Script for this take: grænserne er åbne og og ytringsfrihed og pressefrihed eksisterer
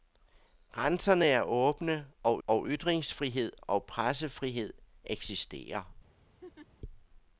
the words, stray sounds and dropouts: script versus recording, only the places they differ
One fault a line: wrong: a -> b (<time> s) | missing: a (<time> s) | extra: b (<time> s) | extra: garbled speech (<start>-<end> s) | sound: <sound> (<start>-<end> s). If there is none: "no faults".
sound: laugh (6.4-6.7 s)